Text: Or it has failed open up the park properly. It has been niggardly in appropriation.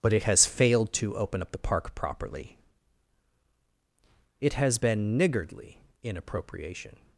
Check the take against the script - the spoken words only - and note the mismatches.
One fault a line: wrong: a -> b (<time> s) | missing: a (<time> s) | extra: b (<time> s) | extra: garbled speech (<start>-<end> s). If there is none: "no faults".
wrong: Or -> But (0.0 s)
extra: to (0.9 s)